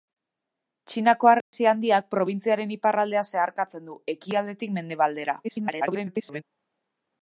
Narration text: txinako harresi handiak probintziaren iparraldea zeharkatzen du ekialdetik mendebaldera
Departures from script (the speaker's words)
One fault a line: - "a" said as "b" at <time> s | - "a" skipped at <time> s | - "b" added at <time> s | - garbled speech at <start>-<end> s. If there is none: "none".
- garbled speech at 5.4-6.4 s